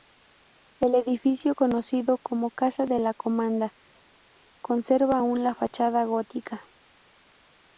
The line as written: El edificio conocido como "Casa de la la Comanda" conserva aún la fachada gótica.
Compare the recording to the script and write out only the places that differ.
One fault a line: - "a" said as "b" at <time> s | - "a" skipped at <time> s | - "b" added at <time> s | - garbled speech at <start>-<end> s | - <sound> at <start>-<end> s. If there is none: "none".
- "la" skipped at 3.1 s